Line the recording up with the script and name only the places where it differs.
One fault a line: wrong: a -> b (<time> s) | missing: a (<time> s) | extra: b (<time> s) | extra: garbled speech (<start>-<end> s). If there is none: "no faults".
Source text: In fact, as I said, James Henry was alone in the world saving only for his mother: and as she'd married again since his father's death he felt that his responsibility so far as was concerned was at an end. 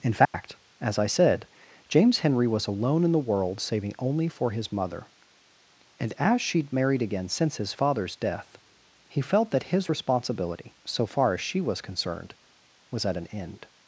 extra: she (11.4 s)